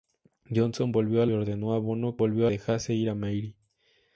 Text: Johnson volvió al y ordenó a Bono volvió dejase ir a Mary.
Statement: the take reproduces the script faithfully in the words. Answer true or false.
true